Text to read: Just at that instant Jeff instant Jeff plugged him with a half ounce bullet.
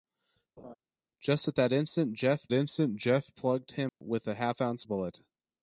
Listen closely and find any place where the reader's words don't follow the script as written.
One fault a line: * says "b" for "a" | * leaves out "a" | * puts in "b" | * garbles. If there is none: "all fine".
all fine